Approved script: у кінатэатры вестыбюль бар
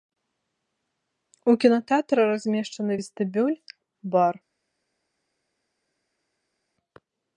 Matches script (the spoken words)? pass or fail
fail